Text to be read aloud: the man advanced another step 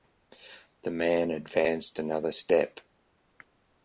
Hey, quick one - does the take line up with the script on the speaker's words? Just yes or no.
yes